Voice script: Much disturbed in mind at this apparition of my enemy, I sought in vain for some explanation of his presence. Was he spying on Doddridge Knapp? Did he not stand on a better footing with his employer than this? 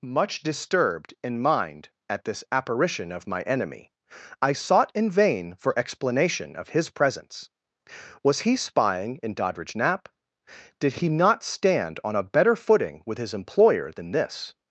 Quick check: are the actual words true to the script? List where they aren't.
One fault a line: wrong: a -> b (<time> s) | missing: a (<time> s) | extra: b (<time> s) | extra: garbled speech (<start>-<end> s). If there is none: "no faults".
missing: some (5.8 s)
wrong: on -> in (9.2 s)